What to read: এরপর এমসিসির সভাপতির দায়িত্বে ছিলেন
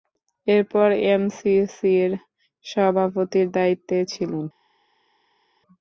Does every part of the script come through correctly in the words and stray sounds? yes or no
yes